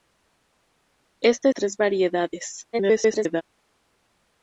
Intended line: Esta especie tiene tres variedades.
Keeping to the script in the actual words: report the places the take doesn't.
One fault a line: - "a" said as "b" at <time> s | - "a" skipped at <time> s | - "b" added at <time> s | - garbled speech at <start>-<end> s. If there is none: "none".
- "especie tiene" skipped at 1.5 s
- garbled speech at 2.7-3.4 s